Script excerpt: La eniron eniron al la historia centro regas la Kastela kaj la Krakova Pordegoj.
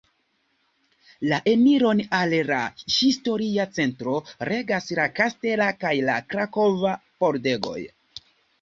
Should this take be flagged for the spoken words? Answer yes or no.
yes